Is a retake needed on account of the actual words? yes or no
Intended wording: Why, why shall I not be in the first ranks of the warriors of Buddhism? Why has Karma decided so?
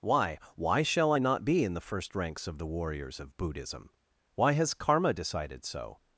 no